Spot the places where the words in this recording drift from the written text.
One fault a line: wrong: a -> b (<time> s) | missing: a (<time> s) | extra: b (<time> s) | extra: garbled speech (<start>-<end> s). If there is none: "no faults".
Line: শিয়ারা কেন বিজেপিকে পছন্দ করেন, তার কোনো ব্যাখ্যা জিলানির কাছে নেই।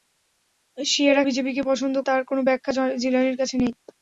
missing: কেন (1.2 s)
missing: করেন (1.9 s)